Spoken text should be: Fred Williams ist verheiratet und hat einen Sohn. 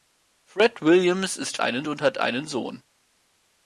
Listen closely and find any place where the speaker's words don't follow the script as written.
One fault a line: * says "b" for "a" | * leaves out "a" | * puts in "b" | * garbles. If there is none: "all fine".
* says "einen" for "verheiratet"